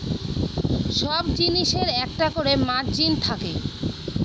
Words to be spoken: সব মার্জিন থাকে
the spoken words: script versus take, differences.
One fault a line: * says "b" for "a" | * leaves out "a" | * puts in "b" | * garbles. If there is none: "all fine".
* puts in "জিনিসের একটা করে"